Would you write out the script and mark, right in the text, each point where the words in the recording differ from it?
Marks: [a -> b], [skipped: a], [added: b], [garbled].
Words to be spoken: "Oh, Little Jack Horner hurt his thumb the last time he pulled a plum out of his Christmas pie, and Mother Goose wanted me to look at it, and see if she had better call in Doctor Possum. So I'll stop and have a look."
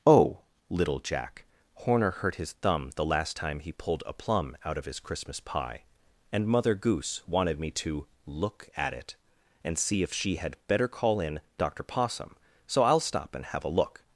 "Oh, Little Jack Horner hurt his thumb the last time he pulled a plum out of his Christmas pie, and Mother Goose wanted me to look at it, and see if she had better call in Doctor Possum. So I'll stop and have a look."